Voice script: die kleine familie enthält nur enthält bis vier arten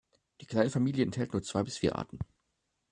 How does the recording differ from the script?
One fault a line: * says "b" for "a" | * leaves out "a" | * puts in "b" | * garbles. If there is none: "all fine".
* says "zwei" for "enthält"